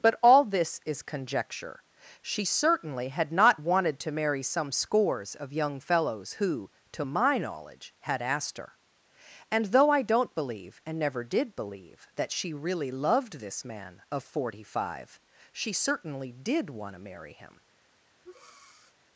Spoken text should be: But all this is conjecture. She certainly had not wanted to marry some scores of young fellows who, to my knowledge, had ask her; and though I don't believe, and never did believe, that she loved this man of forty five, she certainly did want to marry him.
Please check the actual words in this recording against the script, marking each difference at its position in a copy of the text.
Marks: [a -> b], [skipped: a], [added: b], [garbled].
But all this is conjecture. She certainly had not wanted to marry some scores of young fellows who, to my knowledge, had [ask -> asked] her; and though I don't believe, and never did believe, that she [added: really] loved this man of forty five, she certainly did want to marry him.